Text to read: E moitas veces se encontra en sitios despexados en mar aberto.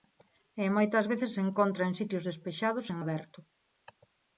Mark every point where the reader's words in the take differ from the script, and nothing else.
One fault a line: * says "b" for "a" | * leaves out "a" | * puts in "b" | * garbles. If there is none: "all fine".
* leaves out "mar"